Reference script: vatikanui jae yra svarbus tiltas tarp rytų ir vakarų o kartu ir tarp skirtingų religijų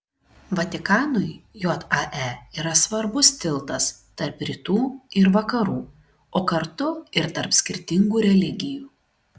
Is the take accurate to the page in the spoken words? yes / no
yes